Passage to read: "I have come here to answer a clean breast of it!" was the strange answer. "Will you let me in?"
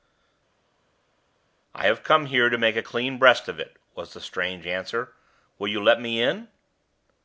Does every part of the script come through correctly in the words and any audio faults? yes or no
no